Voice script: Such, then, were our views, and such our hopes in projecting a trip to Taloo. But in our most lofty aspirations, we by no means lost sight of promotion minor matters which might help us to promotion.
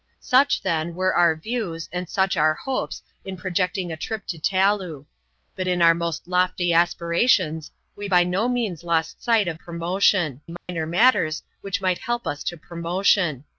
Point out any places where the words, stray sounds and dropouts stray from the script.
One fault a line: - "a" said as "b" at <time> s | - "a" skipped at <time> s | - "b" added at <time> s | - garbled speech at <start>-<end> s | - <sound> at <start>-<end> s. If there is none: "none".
- dropout at 10.6-10.7 s